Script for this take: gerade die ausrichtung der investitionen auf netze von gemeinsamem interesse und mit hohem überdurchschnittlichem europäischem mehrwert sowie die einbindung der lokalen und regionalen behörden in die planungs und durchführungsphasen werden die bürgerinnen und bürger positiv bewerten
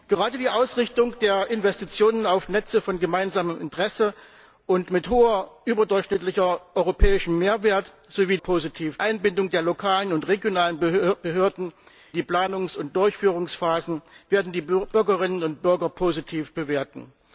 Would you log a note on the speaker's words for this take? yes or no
yes